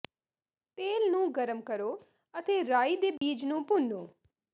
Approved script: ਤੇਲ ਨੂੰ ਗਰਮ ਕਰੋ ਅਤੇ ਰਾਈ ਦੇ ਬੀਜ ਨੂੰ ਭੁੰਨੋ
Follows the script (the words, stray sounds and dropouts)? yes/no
no